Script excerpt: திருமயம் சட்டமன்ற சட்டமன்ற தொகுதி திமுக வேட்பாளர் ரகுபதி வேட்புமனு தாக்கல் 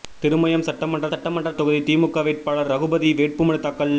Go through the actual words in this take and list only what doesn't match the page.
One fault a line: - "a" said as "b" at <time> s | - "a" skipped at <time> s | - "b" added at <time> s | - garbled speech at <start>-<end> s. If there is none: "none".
none